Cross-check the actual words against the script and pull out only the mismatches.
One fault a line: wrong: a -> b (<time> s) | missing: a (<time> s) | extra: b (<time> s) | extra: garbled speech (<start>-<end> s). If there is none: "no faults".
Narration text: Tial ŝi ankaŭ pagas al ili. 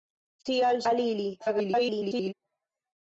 missing: ŝi ankaŭ pagas (0.8 s)
extra: garbled speech (1.4-2.3 s)